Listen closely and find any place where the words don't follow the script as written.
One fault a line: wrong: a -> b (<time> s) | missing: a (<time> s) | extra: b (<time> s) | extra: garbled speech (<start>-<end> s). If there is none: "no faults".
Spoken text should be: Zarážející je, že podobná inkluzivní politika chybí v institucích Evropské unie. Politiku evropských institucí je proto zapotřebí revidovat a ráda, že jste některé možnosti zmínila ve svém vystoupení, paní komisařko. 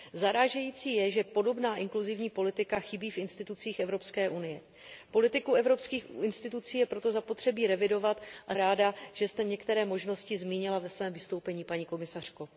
no faults